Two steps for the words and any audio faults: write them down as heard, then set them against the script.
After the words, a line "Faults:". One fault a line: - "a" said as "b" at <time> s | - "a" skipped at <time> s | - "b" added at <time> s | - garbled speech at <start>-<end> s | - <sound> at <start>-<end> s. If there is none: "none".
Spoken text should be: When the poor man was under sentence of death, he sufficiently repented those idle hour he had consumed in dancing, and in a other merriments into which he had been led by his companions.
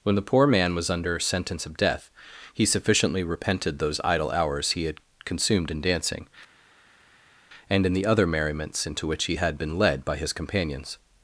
When the poor man was under sentence of death, he sufficiently repented those idle hours he had consumed in dancing, and in the other merriments into which he had been led by his companions.
Faults:
- "hour" said as "hours" at 4.3 s
- "a" said as "the" at 7.9 s